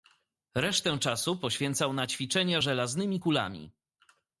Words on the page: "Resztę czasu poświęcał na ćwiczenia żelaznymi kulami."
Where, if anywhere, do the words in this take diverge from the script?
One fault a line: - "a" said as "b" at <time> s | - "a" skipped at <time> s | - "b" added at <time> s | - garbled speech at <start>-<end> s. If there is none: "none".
none